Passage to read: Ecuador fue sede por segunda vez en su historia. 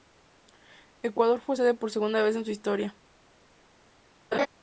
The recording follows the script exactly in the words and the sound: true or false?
false